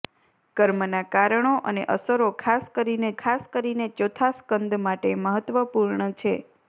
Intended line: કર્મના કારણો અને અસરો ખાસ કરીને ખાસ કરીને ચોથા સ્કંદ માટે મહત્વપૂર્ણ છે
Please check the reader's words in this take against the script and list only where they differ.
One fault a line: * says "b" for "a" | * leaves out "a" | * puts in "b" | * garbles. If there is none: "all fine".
all fine